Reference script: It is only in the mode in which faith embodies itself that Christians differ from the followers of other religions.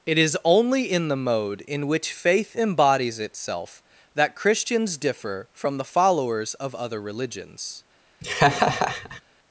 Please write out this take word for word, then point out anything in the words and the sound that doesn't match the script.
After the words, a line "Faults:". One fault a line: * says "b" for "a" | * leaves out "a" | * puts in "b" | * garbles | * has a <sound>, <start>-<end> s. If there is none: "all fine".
It is only in the mode in which faith embodies itself that Christians differ from the followers of other religions.
Faults:
* has a laugh, 8.2-9.2 s